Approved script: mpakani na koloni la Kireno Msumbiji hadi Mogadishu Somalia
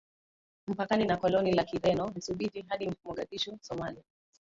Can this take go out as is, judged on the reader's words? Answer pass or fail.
pass